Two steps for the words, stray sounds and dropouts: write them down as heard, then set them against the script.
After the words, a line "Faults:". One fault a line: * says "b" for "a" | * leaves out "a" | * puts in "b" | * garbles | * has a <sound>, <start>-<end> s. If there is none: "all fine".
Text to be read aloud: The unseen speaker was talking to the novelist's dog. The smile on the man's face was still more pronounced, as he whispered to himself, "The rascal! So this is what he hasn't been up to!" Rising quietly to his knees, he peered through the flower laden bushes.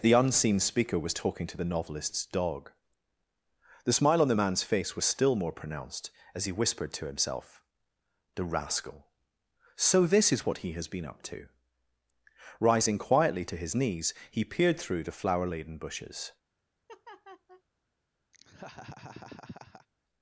The unseen speaker was talking to the novelist's dog. The smile on the man's face was still more pronounced, as he whispered to himself, "The rascal! So this is what he has been up to!" Rising quietly to his knees, he peered through the flower laden bushes.
Faults:
* says "has" for "hasn't"
* has a laugh, 16.9-17.6 s
* has a laugh, 18.3-19.9 s